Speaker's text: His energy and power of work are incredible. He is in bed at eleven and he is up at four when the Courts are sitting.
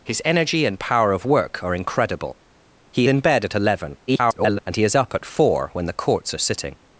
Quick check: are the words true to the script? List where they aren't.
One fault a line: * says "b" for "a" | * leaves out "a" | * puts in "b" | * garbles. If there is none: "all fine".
* leaves out "is"
* garbles